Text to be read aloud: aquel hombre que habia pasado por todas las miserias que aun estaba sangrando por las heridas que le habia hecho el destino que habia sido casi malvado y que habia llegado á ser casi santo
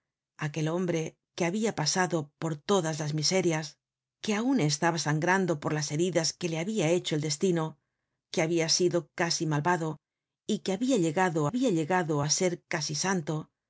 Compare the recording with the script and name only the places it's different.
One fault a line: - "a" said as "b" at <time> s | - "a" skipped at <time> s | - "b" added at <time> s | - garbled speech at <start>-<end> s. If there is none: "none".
- "habia llegado" added at 11.5 s